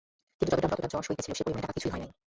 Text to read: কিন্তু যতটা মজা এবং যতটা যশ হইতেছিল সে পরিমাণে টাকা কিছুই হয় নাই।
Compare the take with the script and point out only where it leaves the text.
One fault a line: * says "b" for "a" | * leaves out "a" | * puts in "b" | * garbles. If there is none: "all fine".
* leaves out "মজা এবং"